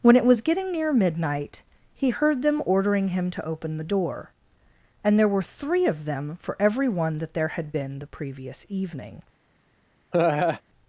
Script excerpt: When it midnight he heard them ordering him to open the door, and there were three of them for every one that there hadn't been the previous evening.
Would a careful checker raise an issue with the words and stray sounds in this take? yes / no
yes